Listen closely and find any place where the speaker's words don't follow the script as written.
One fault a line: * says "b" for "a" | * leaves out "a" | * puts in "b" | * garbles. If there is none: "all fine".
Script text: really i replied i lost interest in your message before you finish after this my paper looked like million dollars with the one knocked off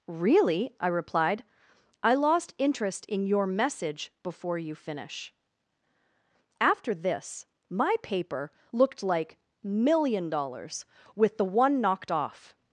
all fine